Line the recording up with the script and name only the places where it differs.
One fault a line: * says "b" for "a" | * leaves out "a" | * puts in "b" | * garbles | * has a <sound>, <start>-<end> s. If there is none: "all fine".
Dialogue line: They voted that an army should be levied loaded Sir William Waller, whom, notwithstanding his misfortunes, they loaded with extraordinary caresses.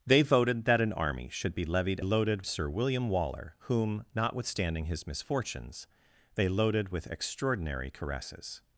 all fine